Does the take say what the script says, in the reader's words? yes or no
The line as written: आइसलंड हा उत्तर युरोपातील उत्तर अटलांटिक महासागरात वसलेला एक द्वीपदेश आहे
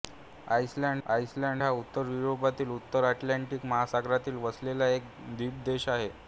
no